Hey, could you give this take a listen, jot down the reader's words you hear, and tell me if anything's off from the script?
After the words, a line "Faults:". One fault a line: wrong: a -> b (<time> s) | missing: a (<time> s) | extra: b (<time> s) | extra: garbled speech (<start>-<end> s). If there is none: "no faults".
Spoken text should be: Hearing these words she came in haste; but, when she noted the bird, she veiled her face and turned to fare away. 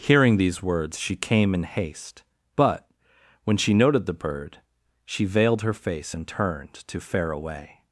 Hearing these words she came in haste; but, when she noted the bird, she veiled her face and turned to fare away.
Faults:
no faults